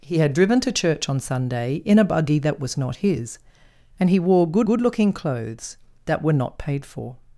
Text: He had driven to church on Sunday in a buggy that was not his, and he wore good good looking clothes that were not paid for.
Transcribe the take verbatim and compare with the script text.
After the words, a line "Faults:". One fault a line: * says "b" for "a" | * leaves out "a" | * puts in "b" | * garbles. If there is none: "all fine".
He had driven to church on Sunday in a buggy that was not his, and he wore good good looking clothes that were not paid for.
Faults:
all fine